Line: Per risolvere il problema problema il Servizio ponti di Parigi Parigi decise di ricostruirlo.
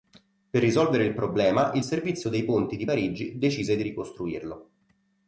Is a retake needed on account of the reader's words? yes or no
yes